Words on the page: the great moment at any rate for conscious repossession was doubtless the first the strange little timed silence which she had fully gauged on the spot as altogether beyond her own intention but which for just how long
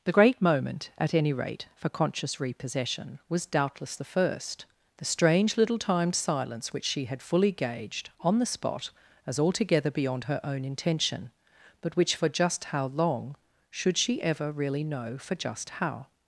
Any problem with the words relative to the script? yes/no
yes